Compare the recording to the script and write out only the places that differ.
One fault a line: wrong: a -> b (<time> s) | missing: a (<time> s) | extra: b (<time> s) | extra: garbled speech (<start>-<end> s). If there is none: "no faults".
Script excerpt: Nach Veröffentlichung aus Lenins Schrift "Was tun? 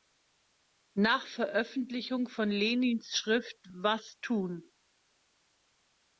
wrong: aus -> von (2.3 s)